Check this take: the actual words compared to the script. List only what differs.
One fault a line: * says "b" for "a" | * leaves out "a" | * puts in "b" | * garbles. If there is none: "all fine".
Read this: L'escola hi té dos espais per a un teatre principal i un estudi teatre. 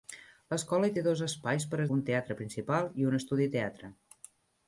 all fine